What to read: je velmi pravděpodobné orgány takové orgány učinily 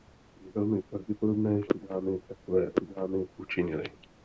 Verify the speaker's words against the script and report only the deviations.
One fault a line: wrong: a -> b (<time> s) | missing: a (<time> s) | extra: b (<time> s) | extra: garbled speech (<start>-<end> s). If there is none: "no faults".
no faults